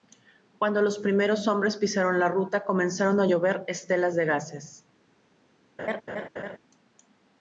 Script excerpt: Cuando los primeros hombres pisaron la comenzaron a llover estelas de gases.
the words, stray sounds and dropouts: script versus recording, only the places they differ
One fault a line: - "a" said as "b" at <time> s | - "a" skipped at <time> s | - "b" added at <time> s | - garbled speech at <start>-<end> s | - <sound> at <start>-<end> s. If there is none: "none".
- "ruta" added at 2.3 s
- laugh at 5.8-6.6 s